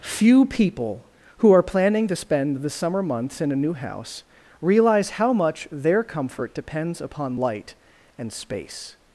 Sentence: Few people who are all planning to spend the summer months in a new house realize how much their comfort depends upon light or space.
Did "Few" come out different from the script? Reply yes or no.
no